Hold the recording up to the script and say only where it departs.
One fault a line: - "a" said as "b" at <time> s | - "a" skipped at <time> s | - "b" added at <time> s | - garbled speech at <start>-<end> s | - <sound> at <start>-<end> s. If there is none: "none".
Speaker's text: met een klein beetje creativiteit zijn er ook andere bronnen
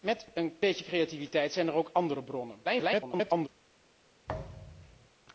- "klein" skipped at 0.6 s
- garbled speech at 2.6-3.5 s
- thud at 4.3-5.1 s